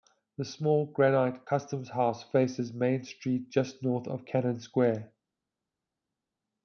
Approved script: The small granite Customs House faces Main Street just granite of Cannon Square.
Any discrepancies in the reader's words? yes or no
yes